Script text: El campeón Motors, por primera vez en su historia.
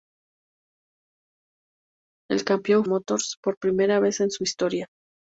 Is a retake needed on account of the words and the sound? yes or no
no